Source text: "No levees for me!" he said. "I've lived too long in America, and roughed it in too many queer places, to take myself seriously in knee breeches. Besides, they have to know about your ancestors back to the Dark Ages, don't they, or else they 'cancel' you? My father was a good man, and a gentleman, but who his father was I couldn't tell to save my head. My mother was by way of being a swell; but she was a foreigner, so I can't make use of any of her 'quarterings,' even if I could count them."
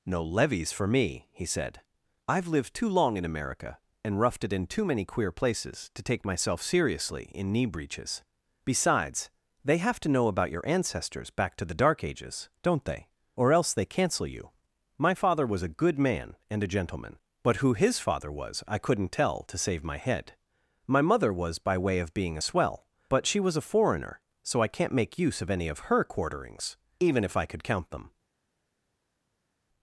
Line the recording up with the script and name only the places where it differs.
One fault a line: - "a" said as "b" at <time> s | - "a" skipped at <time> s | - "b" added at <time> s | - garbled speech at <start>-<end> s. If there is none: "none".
none